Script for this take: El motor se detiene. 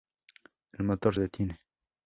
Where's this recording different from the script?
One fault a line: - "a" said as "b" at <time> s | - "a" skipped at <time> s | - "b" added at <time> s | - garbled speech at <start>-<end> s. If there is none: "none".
- "se" skipped at 1.1 s